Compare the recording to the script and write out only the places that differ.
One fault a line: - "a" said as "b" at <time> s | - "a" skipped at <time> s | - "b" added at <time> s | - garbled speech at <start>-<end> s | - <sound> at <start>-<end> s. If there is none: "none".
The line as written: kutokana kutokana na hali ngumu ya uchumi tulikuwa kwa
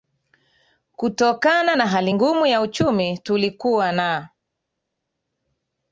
- "kutokana" skipped at 1.8 s
- "kwa" said as "na" at 3.9 s